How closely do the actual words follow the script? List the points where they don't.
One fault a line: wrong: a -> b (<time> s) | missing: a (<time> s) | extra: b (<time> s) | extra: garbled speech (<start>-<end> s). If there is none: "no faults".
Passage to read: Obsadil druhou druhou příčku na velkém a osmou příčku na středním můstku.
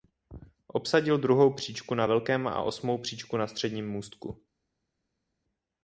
missing: druhou (1.5 s)